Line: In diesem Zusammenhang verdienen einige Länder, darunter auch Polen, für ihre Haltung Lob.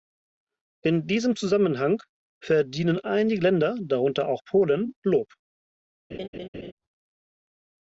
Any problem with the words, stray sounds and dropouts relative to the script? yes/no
yes